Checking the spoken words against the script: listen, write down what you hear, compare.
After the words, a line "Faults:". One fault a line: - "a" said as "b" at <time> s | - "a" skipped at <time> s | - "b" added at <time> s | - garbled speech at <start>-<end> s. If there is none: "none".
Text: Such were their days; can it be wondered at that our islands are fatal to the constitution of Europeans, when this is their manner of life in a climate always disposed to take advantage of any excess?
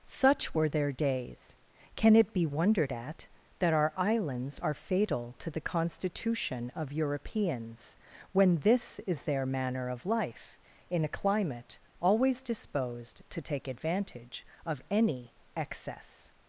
Such were their days; can it be wondered at that our islands are fatal to the constitution of Europeans, when this is their manner of life in a climate always disposed to take advantage of any excess?
Faults:
none